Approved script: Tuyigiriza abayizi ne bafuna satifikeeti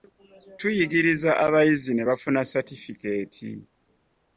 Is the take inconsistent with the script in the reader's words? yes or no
no